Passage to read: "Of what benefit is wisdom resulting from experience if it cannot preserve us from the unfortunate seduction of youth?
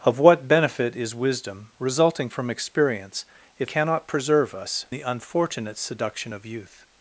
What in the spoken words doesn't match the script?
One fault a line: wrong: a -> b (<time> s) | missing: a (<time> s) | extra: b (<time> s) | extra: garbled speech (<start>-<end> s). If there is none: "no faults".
missing: it (3.7 s)
missing: from (4.9 s)